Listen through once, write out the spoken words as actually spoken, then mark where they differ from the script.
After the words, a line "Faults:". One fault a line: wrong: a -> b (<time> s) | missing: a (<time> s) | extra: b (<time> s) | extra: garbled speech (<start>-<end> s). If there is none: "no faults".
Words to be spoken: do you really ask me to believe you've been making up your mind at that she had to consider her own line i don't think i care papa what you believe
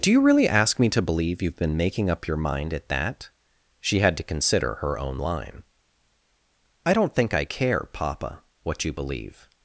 do you really ask me to believe you've been making up your mind at that she had to consider her own line i don't think i care papa what you believe
Faults:
no faults